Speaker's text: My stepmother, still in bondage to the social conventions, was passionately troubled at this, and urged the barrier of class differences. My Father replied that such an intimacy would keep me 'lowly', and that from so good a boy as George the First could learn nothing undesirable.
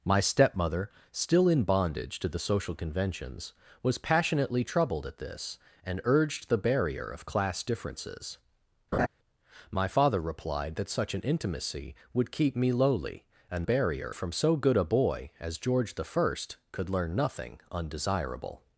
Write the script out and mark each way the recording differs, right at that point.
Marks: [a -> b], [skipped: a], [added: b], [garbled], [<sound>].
My stepmother, still in bondage to the social conventions, was passionately troubled at this, and urged the barrier of class differences. [laugh] My Father replied that such an intimacy would keep me 'lowly', and [that -> barrier] from so good a boy as George the First could learn nothing undesirable.